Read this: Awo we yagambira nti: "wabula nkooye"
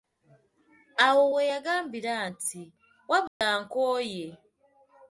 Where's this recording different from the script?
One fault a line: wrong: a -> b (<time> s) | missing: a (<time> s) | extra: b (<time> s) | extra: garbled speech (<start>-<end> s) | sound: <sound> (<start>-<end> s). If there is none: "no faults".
sound: dropout (3.3-3.4 s)